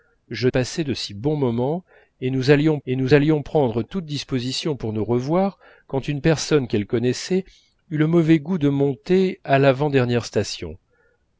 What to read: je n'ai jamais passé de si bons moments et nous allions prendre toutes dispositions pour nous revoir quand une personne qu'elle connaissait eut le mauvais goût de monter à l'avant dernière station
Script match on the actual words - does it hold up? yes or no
no